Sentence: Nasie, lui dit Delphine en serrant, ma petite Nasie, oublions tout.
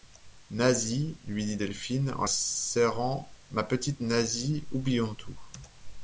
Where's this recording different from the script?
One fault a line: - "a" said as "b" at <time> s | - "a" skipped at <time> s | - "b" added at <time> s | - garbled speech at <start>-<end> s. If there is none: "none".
none